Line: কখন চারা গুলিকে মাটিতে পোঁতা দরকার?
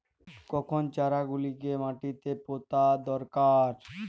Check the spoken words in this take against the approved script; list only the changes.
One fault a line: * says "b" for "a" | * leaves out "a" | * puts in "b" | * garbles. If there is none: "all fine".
all fine